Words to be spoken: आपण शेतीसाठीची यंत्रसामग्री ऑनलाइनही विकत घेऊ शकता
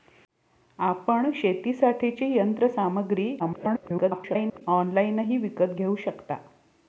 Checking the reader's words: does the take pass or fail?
fail